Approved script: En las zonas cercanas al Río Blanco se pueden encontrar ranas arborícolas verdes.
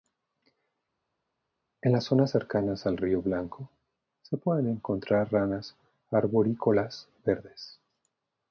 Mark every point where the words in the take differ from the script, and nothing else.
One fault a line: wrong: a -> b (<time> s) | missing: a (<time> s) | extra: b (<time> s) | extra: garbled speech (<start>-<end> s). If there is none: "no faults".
no faults